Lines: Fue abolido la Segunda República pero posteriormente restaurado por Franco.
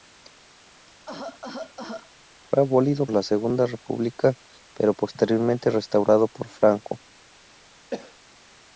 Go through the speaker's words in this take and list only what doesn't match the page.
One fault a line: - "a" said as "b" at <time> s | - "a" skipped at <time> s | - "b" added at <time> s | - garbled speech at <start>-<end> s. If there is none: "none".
none